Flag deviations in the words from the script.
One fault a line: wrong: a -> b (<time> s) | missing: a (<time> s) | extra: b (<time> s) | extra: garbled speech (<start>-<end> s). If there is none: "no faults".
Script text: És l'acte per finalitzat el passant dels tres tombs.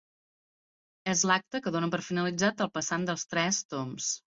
extra: que dóna (1.7 s)